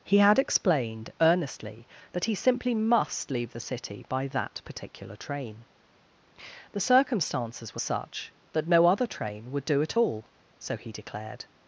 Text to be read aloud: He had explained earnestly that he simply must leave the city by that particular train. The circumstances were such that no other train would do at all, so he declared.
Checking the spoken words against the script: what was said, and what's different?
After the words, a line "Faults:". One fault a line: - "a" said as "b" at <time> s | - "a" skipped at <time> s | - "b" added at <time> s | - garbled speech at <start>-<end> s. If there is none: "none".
He had explained earnestly that he simply must leave the city by that particular train. The circumstances were such that no other train would do at all, so he declared.
Faults:
none